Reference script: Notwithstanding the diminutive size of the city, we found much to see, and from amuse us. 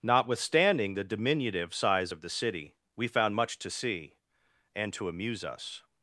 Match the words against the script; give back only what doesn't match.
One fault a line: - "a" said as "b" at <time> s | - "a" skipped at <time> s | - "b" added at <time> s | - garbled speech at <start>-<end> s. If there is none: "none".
- "from" said as "to" at 4.9 s